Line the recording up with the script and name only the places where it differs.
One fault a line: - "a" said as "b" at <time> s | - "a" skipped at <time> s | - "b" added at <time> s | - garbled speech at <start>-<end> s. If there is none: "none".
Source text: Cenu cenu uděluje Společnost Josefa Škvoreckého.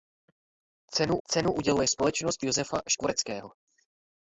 none